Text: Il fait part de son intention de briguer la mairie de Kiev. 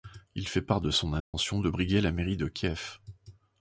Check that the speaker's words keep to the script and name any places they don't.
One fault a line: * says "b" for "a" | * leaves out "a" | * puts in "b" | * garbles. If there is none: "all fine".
all fine